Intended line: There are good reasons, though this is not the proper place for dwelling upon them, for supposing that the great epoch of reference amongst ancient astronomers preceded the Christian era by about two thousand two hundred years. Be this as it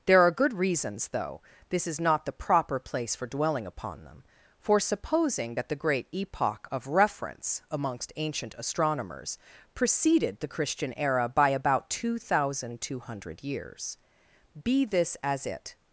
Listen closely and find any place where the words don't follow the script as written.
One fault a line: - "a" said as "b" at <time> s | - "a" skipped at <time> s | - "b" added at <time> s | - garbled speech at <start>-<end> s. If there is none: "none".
none